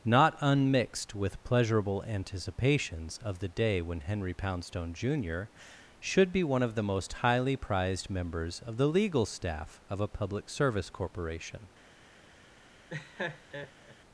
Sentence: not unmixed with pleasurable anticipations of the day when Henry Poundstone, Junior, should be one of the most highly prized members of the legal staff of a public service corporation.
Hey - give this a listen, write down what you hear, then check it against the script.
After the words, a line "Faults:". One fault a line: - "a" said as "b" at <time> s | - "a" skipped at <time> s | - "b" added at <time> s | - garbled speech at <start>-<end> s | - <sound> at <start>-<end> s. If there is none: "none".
not unmixed with pleasurable anticipations of the day when Henry Poundstone, Junior, should be one of the most highly prized members of the legal staff of a public service corporation.
Faults:
- laugh at 12.9-14.0 s